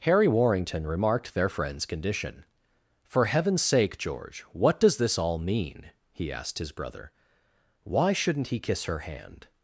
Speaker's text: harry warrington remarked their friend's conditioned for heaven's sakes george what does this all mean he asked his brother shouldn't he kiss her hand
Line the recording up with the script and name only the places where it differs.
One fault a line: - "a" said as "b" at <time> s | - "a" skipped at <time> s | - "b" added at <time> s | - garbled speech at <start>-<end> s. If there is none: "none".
- "conditioned" said as "condition" at 1.9 s
- "sakes" said as "sake" at 3.6 s
- "why" added at 7.8 s